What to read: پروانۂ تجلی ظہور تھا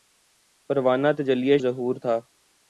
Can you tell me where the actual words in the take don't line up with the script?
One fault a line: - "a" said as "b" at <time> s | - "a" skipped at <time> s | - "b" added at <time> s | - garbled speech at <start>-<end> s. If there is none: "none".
none